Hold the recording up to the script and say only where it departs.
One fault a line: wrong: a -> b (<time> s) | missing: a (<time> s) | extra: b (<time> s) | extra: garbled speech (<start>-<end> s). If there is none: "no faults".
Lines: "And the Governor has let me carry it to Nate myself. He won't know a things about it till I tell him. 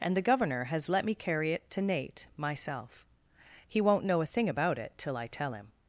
wrong: things -> thing (4.3 s)